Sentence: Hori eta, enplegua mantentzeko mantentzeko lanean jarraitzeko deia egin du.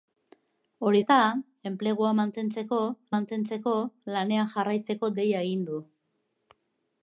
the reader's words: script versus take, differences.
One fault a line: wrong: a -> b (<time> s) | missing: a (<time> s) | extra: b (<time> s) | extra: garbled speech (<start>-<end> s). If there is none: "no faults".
no faults